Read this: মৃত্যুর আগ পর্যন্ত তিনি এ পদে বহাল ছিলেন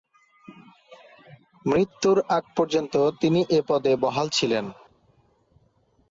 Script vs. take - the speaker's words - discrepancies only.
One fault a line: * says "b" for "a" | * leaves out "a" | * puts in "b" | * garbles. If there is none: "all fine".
all fine